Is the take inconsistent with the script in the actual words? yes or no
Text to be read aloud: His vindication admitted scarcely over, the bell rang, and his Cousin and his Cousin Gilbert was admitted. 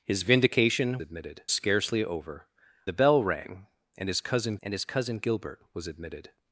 no